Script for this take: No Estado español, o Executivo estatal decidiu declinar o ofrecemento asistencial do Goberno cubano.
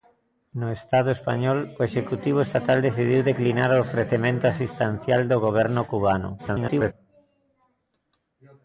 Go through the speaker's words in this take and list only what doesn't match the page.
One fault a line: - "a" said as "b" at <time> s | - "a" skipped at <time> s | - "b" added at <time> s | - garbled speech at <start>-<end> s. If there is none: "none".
- garbled speech at 6.4-6.9 s